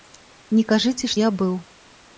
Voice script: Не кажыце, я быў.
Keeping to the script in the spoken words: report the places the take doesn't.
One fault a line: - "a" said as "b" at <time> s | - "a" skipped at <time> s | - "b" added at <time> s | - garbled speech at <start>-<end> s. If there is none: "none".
none